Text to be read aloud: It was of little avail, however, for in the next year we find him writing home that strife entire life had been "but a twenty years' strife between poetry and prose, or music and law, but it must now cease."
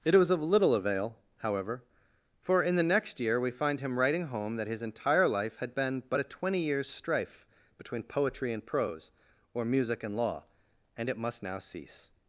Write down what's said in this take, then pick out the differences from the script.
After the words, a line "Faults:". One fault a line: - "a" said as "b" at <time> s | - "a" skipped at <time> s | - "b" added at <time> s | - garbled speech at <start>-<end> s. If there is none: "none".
It was of little avail, however, for in the next year we find him writing home that his entire life had been "but a twenty years' strife between poetry and prose, or music and law, and it must now cease."
Faults:
- "strife" said as "his" at 4.7 s
- "but" said as "and" at 11.0 s